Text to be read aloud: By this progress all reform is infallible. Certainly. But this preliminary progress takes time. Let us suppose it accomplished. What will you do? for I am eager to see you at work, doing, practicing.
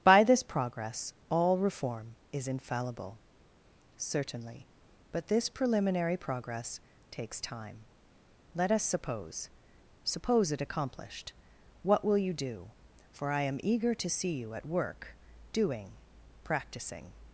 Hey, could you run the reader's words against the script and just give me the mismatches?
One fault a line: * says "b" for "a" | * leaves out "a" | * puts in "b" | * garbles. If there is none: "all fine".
* puts in "suppose"